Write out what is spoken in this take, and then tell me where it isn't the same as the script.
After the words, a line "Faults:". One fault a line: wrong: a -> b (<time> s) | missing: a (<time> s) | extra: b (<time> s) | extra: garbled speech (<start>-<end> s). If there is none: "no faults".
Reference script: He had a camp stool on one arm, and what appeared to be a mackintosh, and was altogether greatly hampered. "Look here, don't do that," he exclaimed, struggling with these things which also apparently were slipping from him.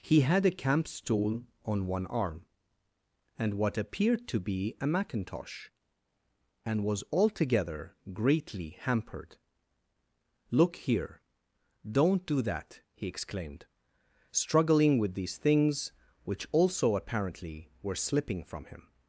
He had a camp stool on one arm, and what appeared to be a mackintosh, and was altogether greatly hampered. "Look here, don't do that," he exclaimed, struggling with these things which also apparently were slipping from him.
Faults:
no faults